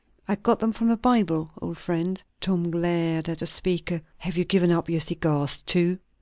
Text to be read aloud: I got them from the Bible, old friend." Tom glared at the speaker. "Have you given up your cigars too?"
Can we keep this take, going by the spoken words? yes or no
yes